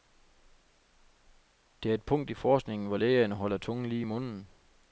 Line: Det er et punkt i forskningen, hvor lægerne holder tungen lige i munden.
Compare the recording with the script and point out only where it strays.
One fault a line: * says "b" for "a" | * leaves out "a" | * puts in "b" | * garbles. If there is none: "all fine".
all fine